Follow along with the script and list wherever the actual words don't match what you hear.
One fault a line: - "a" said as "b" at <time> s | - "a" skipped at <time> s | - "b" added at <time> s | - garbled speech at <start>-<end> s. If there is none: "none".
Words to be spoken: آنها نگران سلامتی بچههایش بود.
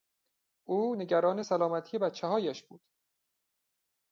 - "آنها" said as "او" at 0.7 s